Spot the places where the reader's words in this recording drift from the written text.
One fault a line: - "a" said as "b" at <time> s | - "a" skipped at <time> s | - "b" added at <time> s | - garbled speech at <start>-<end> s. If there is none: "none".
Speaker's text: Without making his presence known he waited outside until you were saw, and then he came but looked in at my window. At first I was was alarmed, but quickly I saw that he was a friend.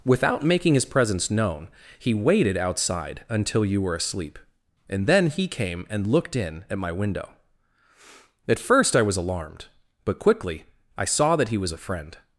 - "saw" said as "asleep" at 4.0 s
- "but" said as "and" at 5.9 s
- "was" skipped at 9.2 s